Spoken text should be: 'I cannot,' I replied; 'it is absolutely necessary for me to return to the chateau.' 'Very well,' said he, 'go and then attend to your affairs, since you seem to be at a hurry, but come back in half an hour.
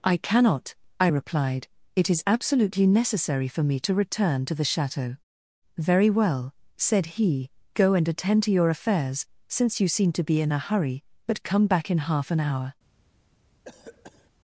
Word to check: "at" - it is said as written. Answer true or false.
false